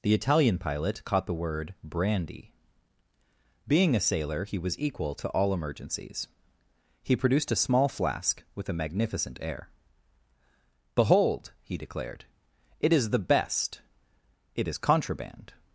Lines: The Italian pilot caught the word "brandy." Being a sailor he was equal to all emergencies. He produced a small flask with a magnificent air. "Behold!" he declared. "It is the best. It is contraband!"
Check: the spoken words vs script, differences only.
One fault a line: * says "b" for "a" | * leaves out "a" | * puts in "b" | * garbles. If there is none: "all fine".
all fine